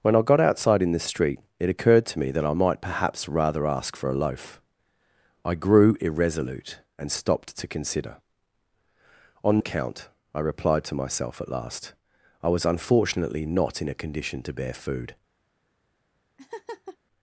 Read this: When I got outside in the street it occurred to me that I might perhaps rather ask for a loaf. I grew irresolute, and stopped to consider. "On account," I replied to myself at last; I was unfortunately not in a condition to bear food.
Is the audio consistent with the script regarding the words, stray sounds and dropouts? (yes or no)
no